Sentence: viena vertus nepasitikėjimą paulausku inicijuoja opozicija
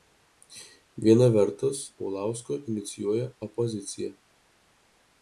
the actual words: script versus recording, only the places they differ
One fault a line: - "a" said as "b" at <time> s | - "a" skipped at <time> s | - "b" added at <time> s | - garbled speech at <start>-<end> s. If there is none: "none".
- "nepasitikėjimą" skipped at 1.8 s